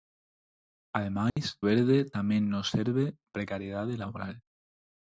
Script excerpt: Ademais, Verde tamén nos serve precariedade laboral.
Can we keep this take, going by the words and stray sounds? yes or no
no